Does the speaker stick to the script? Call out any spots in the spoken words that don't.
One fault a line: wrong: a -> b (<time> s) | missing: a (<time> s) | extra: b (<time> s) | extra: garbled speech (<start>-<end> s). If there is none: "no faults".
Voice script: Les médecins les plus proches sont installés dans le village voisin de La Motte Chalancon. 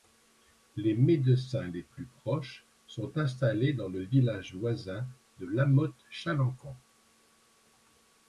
no faults